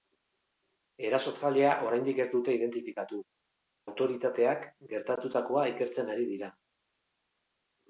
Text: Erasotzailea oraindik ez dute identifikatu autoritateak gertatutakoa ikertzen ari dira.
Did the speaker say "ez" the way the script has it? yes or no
yes